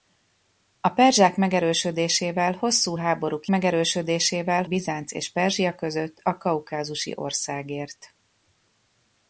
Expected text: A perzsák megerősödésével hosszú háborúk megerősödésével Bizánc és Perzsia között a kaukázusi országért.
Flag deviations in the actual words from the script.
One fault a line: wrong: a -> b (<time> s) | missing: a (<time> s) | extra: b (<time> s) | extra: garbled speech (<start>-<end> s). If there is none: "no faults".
no faults